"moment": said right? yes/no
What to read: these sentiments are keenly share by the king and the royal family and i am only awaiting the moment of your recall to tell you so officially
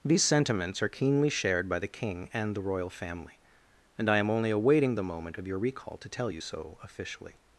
yes